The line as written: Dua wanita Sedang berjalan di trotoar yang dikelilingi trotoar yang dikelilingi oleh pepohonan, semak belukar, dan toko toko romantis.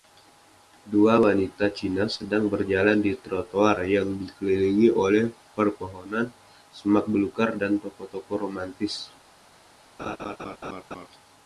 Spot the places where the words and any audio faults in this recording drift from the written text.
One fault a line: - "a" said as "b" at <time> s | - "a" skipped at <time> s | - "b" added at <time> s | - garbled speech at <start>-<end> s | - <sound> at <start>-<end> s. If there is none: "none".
- "Cina" added at 1.8 s
- "trotoar yang dikelilingi" skipped at 5.0 s
- laugh at 10.0-11.1 s